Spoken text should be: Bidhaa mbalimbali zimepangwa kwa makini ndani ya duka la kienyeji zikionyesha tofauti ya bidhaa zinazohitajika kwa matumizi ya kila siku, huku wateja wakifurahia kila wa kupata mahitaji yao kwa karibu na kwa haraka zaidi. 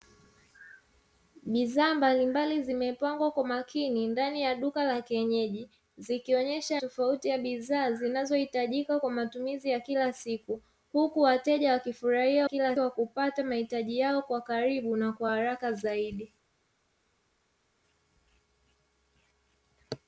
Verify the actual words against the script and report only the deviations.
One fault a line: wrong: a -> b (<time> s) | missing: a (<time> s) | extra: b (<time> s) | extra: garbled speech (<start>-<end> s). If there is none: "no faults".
no faults